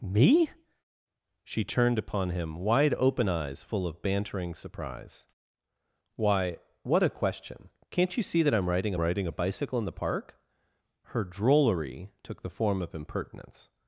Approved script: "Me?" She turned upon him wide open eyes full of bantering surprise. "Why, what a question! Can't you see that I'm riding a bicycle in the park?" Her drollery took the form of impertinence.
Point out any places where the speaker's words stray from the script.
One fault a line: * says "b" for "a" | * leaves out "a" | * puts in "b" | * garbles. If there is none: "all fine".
* puts in "riding"